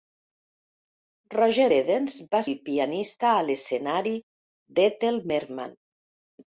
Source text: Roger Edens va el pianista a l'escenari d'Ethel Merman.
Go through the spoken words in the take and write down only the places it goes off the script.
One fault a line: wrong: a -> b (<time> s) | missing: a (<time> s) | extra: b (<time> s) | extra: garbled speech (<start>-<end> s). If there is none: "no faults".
no faults